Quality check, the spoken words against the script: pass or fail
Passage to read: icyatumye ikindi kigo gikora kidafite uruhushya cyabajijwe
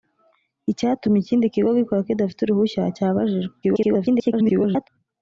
fail